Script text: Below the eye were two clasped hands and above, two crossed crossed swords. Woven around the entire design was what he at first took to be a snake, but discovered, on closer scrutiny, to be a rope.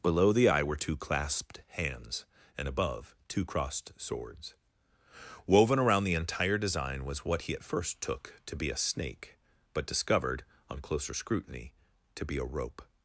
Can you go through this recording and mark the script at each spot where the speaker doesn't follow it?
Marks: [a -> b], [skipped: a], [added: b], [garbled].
Below the eye were two clasped hands and above, two crossed [skipped: crossed] swords. Woven around the entire design was what he at first took to be a snake, but discovered, on closer scrutiny, to be a rope.